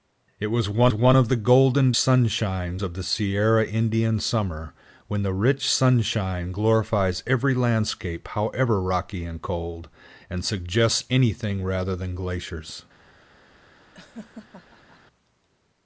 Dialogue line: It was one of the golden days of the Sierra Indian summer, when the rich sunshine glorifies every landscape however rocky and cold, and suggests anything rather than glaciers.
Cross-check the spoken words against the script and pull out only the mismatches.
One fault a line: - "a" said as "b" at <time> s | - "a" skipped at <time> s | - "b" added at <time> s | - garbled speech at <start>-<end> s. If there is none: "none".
- "one" added at 0.9 s
- "days" said as "sunshine" at 2.0 s